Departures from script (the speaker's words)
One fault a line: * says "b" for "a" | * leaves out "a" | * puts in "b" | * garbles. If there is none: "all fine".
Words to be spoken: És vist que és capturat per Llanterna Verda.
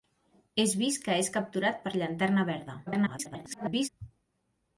* garbles